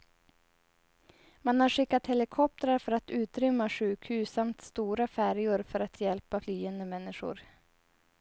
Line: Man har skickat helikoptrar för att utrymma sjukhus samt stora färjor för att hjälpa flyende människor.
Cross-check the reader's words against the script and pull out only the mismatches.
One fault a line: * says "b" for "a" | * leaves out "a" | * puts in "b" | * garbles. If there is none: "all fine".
all fine